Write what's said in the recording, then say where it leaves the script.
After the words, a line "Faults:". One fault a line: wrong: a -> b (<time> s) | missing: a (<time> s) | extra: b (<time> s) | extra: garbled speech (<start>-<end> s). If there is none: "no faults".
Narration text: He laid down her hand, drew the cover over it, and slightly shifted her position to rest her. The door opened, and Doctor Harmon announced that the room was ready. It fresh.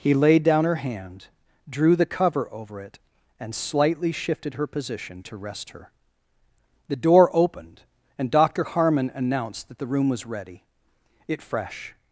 He laid down her hand, drew the cover over it, and slightly shifted her position to rest her. The door opened, and Doctor Harmon announced that the room was ready. It fresh.
Faults:
no faults